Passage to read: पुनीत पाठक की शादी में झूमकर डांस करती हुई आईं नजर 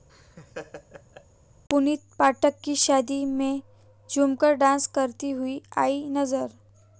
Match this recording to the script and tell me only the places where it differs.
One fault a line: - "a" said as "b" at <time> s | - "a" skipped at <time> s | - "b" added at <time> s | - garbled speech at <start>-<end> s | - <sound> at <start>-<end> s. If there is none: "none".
- laugh at 0.1-1.3 s